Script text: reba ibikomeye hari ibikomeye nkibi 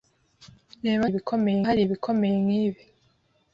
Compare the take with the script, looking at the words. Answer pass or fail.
pass